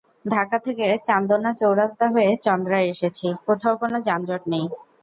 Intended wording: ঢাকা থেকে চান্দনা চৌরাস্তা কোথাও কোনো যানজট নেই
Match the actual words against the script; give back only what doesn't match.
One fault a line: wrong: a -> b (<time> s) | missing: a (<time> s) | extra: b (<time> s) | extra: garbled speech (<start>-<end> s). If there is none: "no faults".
extra: হয়ে চন্দ্রায় এসেছি (2.1 s)